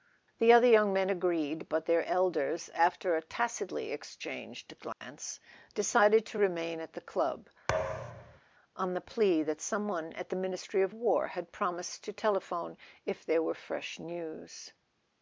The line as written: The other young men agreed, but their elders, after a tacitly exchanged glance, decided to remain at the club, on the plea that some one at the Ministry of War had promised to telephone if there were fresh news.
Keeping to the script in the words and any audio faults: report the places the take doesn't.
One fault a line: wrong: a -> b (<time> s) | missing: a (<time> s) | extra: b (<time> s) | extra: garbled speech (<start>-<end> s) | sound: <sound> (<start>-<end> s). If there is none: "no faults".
sound: dropout (4.9-5.0 s)
sound: thud (7.7-8.4 s)